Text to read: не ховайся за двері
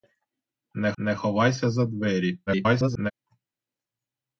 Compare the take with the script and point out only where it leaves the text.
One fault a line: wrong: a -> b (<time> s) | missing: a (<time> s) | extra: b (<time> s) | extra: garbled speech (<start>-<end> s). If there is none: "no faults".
extra: не (1.0 s)
extra: garbled speech (2.5-3.1 s)